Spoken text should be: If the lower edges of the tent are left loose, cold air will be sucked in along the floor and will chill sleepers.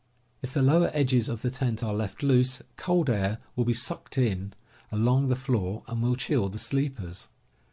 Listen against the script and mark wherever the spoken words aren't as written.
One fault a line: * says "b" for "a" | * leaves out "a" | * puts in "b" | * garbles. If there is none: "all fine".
* puts in "the"